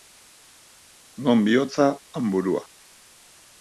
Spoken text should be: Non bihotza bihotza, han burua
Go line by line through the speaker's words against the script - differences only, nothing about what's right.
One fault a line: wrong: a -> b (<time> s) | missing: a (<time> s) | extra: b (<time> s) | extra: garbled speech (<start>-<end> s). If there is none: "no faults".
missing: bihotza (1.9 s)